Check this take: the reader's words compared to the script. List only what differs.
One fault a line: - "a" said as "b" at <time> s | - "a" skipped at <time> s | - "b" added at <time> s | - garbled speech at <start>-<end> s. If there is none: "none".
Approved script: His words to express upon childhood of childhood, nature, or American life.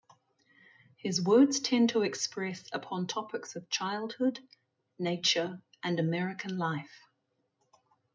- "tend" added at 1.6 s
- "childhood" said as "topics" at 3.0 s
- "or" said as "and" at 5.8 s